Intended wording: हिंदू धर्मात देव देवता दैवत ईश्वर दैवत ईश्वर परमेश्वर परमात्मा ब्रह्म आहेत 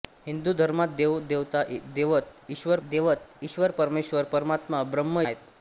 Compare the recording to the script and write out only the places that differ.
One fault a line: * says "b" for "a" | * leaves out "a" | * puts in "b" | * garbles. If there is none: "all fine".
all fine